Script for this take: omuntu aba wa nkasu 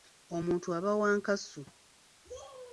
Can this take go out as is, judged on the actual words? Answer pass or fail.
pass